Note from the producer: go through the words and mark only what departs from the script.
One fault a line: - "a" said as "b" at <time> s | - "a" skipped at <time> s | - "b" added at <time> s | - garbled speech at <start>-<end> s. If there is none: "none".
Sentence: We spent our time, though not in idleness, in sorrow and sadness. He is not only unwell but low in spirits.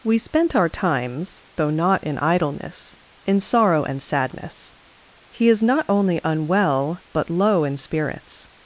- "time" said as "times" at 0.7 s